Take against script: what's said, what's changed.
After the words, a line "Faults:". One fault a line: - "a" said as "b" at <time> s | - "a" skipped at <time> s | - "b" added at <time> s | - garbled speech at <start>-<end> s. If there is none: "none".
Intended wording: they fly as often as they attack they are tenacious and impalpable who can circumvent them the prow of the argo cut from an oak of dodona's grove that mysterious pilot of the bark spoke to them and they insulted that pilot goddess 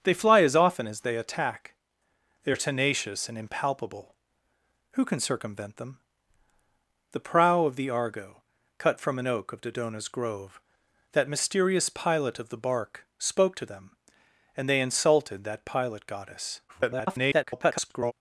they fly as often as they attack they are tenacious and impalpable who can circumvent them the prow of the argo cut from an oak of dodona's grove that mysterious pilot of the bark spoke to them and they insulted that pilot goddess [garbled]
Faults:
- garbled speech at 16.7-18.1 s